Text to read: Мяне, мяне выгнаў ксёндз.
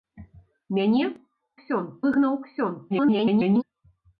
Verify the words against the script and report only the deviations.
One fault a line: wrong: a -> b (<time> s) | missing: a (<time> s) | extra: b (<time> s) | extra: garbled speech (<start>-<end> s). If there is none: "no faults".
wrong: мяне -> ксёндз (1.6 s)
extra: garbled speech (2.9-3.6 s)